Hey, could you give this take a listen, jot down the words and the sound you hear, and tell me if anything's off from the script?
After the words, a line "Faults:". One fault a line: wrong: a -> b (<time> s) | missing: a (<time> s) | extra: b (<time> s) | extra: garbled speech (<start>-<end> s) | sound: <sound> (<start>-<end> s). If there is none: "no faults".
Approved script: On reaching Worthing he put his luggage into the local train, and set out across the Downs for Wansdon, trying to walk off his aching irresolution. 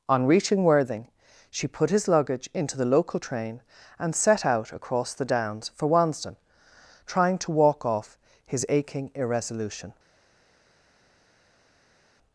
On reaching Worthing she put his luggage into the local train, and set out across the Downs for Wansdon, trying to walk off his aching irresolution.
Faults:
wrong: he -> she (1.5 s)